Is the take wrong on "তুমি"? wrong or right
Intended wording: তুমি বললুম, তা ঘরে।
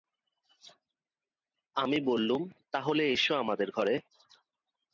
wrong